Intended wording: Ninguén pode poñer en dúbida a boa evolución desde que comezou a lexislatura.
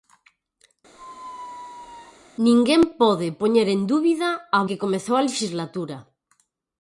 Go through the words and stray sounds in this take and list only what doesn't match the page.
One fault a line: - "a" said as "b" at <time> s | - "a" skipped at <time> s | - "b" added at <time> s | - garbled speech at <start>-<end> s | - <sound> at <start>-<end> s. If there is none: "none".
- squeak at 0.9-2.3 s
- "boa evolución desde" skipped at 4.6 s